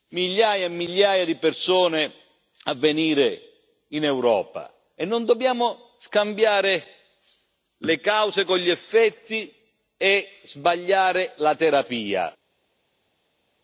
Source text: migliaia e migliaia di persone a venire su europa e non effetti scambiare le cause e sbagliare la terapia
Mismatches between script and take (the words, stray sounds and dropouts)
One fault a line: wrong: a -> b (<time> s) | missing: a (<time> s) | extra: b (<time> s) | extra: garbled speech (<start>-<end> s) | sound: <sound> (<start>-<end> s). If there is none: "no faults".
wrong: su -> in (3.9 s)
wrong: effetti -> dobbiamo (5.2 s)
extra: con gli effetti (8.4 s)